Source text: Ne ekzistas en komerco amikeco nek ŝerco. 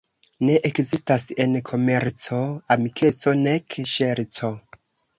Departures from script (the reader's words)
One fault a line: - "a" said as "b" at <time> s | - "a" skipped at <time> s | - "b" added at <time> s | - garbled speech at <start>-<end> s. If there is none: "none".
none